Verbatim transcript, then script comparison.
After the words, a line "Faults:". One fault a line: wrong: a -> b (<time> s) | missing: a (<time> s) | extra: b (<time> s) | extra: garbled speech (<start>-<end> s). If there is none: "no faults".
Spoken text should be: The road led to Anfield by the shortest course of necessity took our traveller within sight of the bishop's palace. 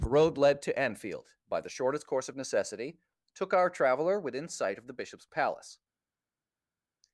The road led to Anfield by the shortest course of necessity took our traveller within sight of the bishop's palace.
Faults:
no faults